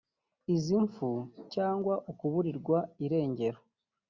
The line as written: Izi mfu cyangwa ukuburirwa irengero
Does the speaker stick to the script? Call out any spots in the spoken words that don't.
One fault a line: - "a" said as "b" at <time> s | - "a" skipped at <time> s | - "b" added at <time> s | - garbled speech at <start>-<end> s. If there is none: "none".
none